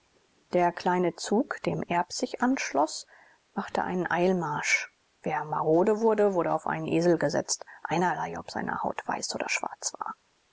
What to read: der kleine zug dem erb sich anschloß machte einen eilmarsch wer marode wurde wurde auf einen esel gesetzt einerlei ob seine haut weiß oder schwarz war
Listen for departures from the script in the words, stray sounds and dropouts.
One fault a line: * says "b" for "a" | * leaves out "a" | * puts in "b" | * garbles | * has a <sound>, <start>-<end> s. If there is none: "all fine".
all fine